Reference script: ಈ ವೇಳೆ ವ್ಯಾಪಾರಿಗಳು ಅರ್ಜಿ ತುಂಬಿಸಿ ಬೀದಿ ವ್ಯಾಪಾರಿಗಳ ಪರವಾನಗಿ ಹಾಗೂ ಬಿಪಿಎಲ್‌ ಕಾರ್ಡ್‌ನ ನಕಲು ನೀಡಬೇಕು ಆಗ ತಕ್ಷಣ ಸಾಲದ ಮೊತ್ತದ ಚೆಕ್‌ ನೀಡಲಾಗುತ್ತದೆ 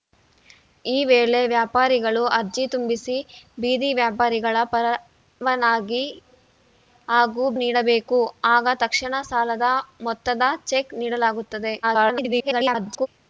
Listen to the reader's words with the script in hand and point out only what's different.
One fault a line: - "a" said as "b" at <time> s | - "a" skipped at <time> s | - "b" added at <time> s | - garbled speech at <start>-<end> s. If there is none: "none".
- "ಬಿಪಿಎಲ್ ಕಾರ್ಡ್‌ನ ನಕಲು" skipped at 7.5 s
- garbled speech at 11.8-13.1 s